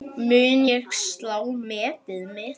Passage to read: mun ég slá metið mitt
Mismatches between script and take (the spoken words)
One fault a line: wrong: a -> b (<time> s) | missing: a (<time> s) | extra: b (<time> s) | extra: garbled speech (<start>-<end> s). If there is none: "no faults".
no faults